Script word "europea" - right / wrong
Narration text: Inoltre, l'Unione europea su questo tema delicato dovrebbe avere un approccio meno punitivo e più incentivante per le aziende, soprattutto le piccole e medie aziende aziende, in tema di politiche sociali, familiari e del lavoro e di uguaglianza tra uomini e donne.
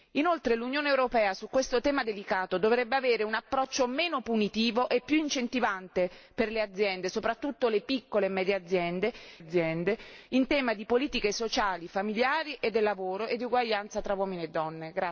right